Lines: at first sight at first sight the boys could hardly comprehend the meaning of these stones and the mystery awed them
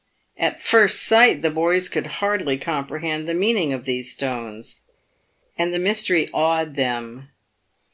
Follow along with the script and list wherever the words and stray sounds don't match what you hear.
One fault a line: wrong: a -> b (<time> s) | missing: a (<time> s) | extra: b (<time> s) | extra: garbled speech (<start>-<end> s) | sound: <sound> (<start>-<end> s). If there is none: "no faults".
missing: at first sight (1.4 s)